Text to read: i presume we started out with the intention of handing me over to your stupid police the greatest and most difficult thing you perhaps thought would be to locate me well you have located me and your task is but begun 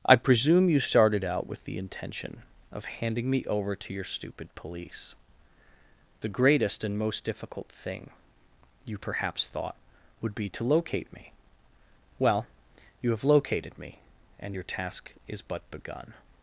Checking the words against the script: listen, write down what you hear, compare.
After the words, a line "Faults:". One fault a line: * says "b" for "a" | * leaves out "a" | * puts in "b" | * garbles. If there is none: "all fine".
i presume you started out with the intention of handing me over to your stupid police the greatest and most difficult thing you perhaps thought would be to locate me well you have located me and your task is but begun
Faults:
* says "you" for "we"